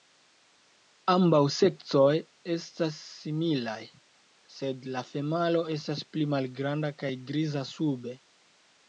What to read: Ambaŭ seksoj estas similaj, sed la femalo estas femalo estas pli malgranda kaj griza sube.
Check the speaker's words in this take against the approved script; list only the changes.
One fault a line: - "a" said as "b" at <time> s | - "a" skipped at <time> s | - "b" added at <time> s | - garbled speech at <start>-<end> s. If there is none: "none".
- "femalo estas" skipped at 6.0 s